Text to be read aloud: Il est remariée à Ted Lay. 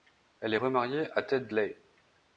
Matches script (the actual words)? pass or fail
fail